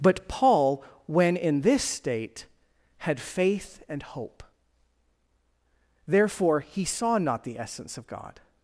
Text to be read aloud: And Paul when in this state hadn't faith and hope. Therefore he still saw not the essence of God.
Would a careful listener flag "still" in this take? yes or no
yes